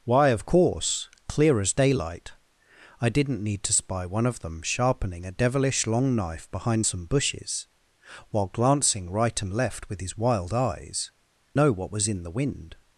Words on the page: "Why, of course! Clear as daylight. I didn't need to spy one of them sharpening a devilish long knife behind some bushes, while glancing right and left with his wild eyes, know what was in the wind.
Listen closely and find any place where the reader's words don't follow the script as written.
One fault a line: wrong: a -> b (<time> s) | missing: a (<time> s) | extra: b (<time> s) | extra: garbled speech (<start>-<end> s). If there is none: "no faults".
no faults